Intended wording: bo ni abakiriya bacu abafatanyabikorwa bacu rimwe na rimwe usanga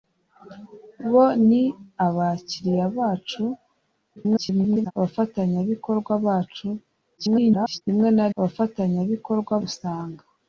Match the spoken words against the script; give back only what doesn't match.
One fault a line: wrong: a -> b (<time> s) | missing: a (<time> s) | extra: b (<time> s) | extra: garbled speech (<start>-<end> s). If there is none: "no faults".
extra: garbled speech (4.2-4.9 s)
extra: garbled speech (7.2-7.8 s)
wrong: rimwe -> abafatanyabikorwa (8.4 s)